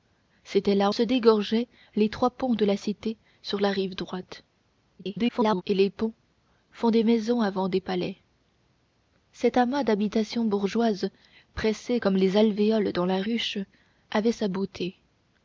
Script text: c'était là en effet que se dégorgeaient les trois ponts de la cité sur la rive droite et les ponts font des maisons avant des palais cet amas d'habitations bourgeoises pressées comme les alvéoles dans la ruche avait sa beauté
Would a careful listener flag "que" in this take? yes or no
yes